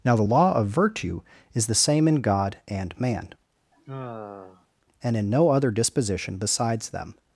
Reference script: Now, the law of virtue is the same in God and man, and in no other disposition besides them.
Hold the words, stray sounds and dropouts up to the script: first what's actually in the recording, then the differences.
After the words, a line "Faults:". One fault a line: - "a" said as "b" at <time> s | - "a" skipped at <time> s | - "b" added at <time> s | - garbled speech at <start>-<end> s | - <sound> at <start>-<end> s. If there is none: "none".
Now, the law of virtue is the same in God and man, and in no other disposition besides them.
Faults:
- sigh at 3.7-4.7 s